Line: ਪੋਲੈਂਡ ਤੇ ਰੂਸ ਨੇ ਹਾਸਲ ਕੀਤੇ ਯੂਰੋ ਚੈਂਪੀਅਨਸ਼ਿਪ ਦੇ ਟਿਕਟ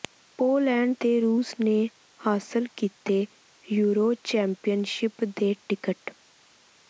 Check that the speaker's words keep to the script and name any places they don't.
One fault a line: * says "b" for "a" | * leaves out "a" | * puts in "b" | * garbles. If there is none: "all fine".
all fine